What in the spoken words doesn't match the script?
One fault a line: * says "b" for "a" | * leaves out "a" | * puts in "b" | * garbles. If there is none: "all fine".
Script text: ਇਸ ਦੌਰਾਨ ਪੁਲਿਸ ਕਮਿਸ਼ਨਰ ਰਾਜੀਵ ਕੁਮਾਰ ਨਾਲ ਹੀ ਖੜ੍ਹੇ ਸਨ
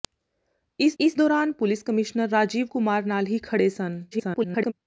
* puts in "ਇਸ"
* garbles